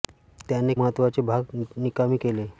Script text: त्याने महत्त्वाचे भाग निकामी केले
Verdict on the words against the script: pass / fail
pass